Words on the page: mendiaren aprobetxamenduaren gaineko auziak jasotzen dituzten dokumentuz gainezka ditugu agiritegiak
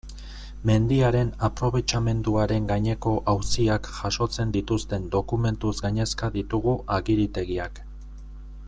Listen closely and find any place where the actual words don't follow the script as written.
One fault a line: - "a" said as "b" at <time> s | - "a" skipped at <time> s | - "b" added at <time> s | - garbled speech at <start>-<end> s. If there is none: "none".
none